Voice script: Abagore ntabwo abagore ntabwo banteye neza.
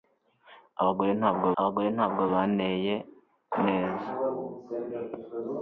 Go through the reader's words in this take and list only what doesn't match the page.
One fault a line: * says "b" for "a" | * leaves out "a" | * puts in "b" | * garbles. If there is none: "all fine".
all fine